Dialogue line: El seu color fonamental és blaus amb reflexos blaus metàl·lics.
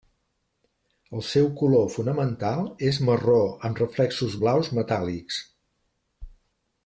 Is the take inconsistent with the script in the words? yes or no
yes